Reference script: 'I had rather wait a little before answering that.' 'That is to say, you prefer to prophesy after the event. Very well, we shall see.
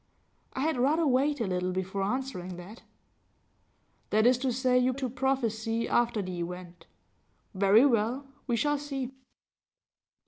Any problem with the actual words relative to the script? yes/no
yes